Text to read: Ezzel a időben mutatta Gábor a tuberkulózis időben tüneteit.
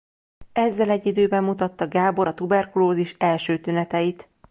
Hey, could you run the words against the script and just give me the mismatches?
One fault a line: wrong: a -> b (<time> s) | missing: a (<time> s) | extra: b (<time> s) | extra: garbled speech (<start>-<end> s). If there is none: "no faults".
wrong: a -> egy (0.9 s)
wrong: időben -> első (3.2 s)